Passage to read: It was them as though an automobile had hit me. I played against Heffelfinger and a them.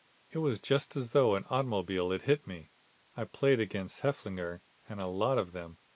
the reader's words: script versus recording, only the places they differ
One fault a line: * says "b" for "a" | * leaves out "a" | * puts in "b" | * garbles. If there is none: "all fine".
* says "just" for "them"
* puts in "lot of"